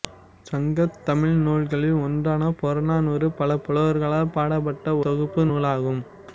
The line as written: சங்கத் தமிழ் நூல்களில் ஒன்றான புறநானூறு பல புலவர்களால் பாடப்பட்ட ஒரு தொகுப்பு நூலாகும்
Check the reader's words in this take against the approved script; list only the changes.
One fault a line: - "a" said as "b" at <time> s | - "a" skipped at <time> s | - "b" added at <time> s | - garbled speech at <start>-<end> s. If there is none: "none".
- "ஒரு" skipped at 5.0 s